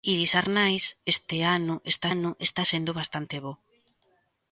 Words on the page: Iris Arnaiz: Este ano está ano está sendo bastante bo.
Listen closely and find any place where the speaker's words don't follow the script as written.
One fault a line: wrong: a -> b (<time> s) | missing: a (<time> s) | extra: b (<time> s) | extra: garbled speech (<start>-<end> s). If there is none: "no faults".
no faults